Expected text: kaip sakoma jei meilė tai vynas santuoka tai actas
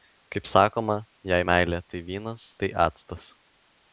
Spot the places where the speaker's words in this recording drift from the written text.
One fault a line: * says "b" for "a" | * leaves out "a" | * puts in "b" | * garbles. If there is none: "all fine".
* leaves out "santuoka"